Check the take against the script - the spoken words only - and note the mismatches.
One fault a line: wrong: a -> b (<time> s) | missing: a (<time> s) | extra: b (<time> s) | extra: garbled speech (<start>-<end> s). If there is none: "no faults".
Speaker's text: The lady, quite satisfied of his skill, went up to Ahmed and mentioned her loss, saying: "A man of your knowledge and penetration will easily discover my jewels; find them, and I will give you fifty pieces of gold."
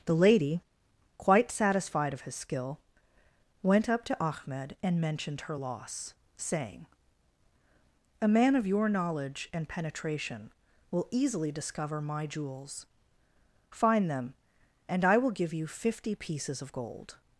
no faults